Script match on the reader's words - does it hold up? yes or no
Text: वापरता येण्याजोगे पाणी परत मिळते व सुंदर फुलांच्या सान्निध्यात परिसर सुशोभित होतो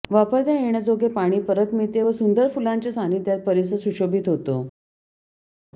yes